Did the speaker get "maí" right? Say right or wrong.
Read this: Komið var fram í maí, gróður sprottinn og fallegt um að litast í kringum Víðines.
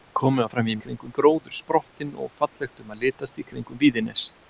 wrong